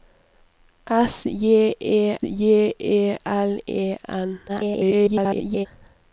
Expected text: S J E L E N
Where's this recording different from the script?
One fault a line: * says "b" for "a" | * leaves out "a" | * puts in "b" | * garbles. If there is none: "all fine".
* puts in "J E"
* garbles